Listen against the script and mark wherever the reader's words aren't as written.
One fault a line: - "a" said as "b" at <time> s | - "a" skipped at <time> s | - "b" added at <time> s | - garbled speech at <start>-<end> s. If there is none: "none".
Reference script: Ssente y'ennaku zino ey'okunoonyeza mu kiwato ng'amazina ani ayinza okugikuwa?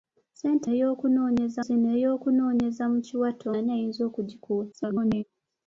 - "y'ennaku" said as "ey'okunoonyeza" at 0.7 s
- "ng'amazina" skipped at 3.5 s
- garbled speech at 4.7-5.2 s